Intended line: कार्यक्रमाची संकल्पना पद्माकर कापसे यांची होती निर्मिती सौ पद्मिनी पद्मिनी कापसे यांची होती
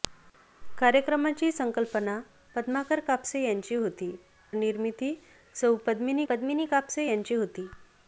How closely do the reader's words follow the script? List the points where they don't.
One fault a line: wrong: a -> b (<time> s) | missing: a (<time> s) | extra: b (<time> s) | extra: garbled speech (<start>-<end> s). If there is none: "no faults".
no faults